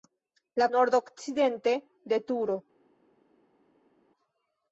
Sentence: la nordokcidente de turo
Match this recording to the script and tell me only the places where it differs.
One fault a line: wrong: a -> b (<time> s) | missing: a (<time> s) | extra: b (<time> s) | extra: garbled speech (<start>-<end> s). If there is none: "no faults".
no faults